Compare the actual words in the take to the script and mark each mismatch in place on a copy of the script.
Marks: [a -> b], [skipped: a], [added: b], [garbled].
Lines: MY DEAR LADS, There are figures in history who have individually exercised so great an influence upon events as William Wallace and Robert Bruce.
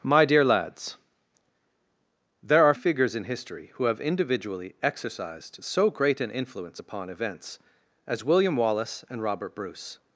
MY DEAR LADS, There are figures in history who have individually exercised so great an influence upon events as William Wallace and Robert Bruce.